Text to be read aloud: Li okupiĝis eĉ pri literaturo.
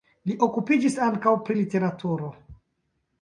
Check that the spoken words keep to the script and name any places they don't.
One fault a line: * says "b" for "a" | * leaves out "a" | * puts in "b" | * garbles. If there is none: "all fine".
* says "ankaŭ" for "eĉ"